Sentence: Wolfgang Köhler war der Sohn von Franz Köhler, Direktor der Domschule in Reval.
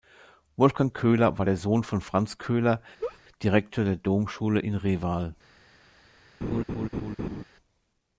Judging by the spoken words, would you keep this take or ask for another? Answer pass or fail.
pass